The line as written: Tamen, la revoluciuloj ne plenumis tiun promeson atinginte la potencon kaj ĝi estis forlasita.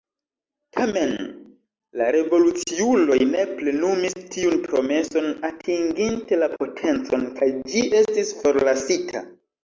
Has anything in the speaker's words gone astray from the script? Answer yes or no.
no